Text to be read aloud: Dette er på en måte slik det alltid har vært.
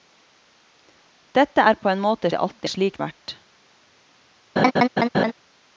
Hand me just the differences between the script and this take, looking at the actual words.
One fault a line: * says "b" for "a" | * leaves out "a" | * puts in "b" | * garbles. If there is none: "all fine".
* leaves out "slik"
* says "slik" for "har"